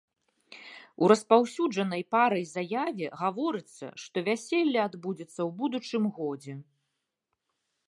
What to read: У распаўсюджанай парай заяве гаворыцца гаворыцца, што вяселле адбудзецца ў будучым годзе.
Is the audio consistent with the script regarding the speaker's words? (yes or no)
no